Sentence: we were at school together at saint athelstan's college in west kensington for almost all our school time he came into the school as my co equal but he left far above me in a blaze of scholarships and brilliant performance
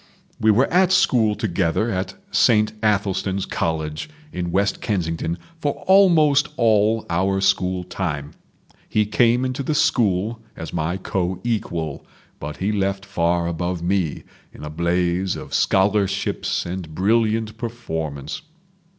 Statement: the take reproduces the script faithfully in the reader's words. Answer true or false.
true